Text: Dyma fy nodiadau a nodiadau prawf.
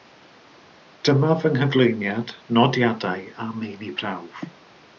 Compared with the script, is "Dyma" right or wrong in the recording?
right